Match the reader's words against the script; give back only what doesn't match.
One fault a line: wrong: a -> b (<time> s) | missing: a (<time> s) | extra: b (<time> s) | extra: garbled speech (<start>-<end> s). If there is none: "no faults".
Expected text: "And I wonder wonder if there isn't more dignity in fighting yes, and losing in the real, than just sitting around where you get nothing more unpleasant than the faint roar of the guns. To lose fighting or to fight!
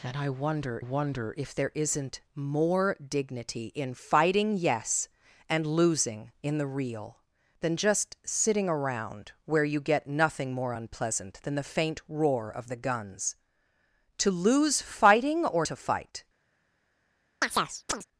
no faults